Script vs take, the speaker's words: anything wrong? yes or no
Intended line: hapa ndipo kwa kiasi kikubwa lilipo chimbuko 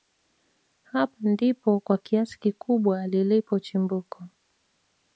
no